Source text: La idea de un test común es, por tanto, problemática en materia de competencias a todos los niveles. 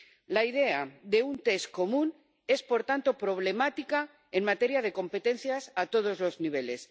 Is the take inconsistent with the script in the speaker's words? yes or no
no